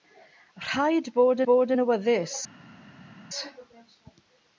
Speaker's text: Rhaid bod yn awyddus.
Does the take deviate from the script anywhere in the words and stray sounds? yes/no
yes